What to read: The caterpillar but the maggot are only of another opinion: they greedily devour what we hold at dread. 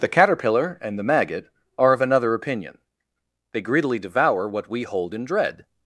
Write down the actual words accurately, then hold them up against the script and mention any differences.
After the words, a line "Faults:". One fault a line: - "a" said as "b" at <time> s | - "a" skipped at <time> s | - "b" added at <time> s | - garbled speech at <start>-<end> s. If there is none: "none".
The caterpillar and the maggot are of another opinion: they greedily devour what we hold in dread.
Faults:
- "but" said as "and" at 0.8 s
- "only" skipped at 1.9 s
- "at" said as "in" at 5.1 s